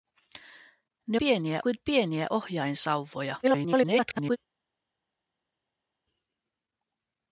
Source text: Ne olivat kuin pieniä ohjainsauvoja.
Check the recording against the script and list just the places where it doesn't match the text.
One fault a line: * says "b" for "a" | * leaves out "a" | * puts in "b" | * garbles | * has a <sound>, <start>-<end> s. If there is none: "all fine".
* says "pieniä" for "olivat"
* garbles